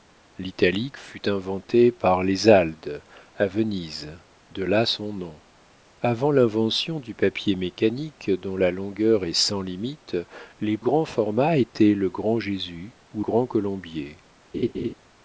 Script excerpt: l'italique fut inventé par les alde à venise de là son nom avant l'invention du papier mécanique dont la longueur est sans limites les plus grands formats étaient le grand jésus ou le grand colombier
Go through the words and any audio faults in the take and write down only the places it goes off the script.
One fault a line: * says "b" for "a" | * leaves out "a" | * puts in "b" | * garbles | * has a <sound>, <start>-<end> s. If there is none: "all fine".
* leaves out "plus"
* leaves out "le"
* has a laugh, 14.5-14.9 s